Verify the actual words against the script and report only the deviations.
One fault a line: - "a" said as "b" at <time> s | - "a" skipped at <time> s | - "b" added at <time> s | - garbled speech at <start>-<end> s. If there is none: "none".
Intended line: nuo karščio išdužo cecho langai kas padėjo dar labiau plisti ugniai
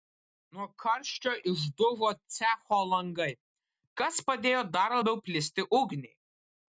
none